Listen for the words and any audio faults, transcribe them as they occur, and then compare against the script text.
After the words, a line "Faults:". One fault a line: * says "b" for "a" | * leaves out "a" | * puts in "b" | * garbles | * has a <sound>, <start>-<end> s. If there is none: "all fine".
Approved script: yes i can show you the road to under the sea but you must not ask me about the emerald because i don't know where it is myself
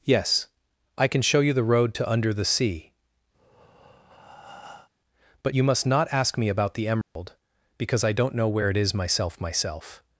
yes i can show you the road to under the sea but you must not ask me about the emerald because i don't know where it is myself myself
Faults:
* has a breath, 3.3-4.9 s
* has a dropout, 7.0-7.2 s
* puts in "myself"